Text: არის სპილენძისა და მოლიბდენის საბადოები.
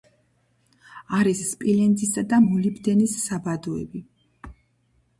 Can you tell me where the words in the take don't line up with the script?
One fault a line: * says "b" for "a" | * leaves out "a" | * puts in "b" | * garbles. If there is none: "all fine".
all fine